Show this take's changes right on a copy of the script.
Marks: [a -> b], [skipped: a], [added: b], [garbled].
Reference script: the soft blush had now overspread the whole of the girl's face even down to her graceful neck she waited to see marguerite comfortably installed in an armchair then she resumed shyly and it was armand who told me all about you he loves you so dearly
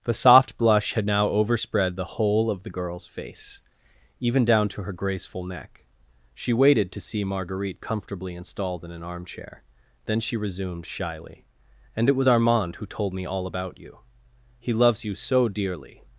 the soft blush had now overspread the whole of the girl's face even down to her graceful neck she waited to see marguerite comfortably installed in an armchair then she resumed shyly and it was armand who told me all about you he loves you so dearly